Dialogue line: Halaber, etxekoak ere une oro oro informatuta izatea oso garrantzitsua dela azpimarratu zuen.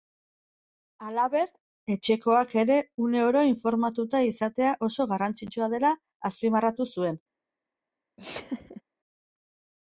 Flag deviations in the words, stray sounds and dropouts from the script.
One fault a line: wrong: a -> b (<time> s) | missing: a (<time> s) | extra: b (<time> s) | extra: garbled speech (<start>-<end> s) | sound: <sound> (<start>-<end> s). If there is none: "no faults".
missing: oro (3.4 s)
sound: laugh (8.2-8.8 s)